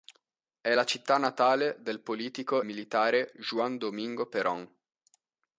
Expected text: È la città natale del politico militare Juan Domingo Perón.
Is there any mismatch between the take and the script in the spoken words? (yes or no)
no